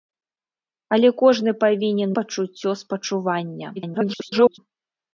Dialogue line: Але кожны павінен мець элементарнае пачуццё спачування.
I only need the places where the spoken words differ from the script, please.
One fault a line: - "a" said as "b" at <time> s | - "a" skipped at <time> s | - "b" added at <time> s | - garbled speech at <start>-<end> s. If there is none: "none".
- "мець элементарнае" skipped at 2.1 s
- garbled speech at 3.8-4.6 s